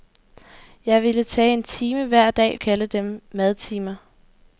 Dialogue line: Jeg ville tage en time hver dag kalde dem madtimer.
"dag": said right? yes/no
yes